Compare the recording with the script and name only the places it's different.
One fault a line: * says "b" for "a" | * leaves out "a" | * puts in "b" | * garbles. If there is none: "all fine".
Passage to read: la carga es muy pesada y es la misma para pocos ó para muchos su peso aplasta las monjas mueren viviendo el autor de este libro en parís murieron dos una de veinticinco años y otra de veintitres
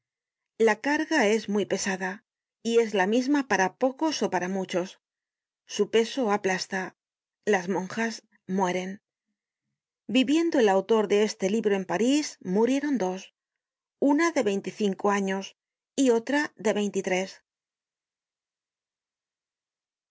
all fine